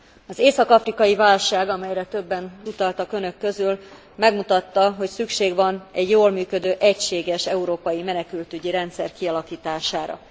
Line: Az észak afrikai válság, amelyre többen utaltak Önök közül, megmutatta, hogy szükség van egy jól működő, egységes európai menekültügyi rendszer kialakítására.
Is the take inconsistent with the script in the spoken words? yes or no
no